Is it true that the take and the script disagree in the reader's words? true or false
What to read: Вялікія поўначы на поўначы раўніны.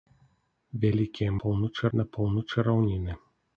false